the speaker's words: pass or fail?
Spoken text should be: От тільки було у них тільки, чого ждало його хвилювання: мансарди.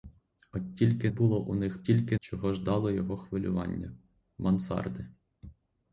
pass